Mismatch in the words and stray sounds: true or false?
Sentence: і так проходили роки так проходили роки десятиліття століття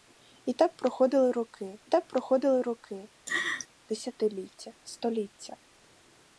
true